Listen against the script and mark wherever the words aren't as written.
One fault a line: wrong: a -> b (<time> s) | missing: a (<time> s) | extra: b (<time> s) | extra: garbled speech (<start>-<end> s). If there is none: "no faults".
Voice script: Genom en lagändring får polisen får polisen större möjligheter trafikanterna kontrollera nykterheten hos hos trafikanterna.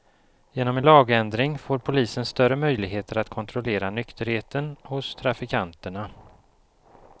missing: får polisen (2.2 s)
wrong: trafikanterna -> att (3.2 s)
missing: hos (5.1 s)